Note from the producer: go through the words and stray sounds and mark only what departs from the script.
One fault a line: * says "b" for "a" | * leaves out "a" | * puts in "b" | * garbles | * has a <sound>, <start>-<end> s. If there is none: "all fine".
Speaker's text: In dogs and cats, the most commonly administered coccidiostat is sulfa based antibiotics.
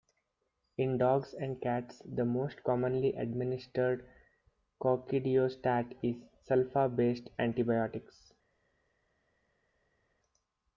all fine